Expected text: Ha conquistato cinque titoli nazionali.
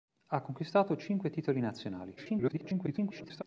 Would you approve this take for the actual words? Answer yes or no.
no